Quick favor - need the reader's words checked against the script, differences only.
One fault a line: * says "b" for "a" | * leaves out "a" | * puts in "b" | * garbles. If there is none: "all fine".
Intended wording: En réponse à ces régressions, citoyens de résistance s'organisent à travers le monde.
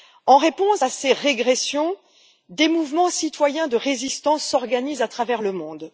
* puts in "des mouvements"